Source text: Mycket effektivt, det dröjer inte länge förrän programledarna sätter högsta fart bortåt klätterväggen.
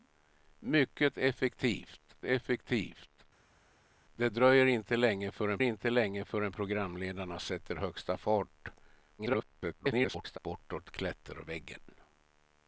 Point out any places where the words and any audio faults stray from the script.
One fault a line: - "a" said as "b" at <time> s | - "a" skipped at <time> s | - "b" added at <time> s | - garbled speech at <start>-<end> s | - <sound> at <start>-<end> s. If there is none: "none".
- "effektivt" added at 2.2 s
- "inte länge förrän" added at 5.6 s
- garbled speech at 9.2-10.4 s